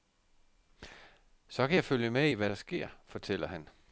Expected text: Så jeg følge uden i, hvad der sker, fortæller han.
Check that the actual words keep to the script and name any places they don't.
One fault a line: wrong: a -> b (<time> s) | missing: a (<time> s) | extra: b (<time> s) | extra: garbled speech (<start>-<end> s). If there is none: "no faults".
extra: kan (1.7 s)
wrong: uden -> med (2.1 s)